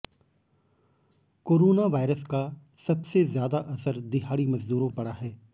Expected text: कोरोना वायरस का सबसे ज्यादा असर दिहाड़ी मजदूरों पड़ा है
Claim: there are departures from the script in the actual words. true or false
false